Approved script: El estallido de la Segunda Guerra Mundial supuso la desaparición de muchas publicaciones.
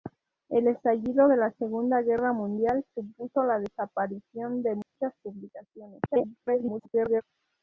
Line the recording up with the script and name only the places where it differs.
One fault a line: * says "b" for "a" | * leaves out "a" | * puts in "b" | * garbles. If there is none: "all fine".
* garbles